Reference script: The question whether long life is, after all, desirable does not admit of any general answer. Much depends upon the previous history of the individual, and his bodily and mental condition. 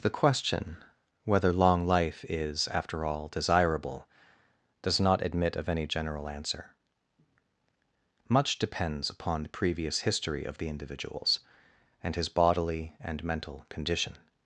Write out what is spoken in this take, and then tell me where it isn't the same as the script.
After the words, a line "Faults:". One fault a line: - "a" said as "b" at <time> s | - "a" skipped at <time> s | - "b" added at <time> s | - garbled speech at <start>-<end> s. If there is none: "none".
The question whether long life is, after all, desirable does not admit of any general answer. Much depends upon the previous history of the individuals, and his bodily and mental condition.
Faults:
- "individual" said as "individuals" at 10.7 s